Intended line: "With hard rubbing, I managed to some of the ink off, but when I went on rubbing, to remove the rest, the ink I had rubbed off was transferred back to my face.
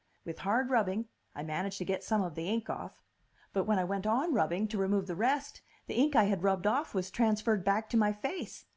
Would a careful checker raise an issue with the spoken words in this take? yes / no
yes